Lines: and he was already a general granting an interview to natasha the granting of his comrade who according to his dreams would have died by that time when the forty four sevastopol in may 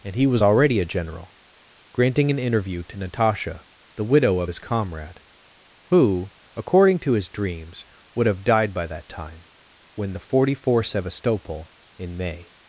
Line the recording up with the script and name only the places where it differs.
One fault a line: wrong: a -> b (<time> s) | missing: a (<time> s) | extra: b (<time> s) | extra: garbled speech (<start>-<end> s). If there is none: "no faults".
wrong: granting -> widow (4.0 s)